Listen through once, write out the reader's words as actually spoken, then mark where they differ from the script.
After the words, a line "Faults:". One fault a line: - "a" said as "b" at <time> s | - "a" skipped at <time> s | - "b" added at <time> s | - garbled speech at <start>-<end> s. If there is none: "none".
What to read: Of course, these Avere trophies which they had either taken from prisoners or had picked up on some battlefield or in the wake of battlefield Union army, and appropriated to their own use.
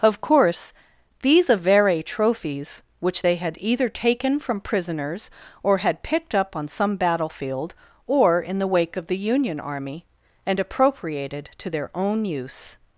Of course, these Avere trophies which they had either taken from prisoners or had picked up on some battlefield or in the wake of the Union army, and appropriated to their own use.
Faults:
- "battlefield" said as "the" at 9.1 s